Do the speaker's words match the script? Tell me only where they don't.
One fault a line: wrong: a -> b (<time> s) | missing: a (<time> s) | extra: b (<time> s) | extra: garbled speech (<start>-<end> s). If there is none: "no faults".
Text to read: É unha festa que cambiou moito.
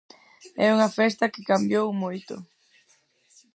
no faults